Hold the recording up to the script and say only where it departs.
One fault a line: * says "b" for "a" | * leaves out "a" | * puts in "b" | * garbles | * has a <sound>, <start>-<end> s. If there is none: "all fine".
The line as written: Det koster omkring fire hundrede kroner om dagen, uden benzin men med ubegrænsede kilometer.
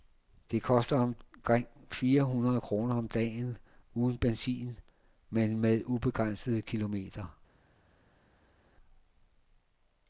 all fine